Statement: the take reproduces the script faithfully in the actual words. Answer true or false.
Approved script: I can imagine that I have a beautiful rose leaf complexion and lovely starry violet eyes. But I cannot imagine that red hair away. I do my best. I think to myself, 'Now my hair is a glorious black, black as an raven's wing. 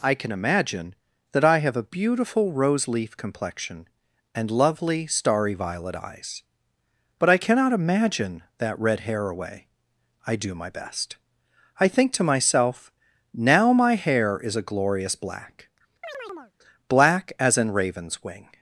true